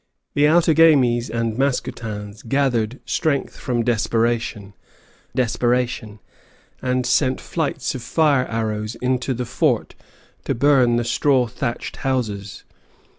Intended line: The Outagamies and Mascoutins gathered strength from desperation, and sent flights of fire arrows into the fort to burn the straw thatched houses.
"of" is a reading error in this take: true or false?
false